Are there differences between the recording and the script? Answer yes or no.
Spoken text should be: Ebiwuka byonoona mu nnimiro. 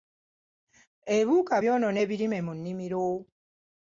yes